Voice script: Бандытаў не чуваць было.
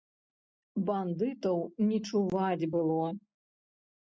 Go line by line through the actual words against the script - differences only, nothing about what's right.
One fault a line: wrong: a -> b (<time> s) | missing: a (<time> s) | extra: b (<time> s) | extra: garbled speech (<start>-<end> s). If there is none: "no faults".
no faults